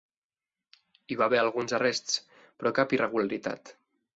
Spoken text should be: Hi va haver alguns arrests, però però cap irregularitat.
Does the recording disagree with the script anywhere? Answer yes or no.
yes